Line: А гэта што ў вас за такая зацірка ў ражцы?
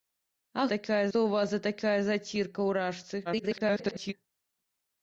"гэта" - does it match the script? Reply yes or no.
no